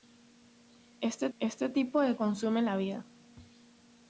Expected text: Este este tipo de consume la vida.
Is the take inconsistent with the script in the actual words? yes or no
no